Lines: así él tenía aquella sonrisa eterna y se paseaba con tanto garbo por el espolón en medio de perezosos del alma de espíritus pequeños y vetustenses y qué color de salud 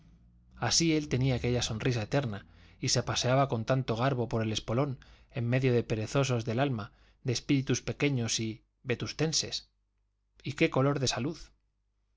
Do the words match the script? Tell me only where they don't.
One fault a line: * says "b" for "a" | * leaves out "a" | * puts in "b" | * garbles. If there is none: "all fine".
all fine